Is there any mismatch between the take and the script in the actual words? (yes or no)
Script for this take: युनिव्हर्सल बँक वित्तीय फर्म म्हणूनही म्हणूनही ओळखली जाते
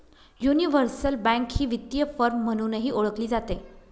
yes